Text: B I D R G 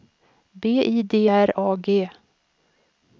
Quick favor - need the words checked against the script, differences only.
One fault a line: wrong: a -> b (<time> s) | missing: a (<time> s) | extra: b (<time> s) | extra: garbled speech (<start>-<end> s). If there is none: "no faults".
extra: A (1.6 s)